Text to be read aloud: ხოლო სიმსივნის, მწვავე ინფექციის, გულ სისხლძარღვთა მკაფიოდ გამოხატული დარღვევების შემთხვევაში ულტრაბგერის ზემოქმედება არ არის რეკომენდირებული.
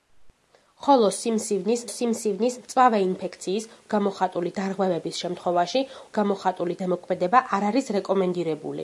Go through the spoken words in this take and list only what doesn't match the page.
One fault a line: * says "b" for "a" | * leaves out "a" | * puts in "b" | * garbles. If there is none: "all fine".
* puts in "სიმსივნის"
* leaves out "გულ სისხლძარღვთა მკაფიოდ"
* says "გამოხატული" for "ულტრაბგერის"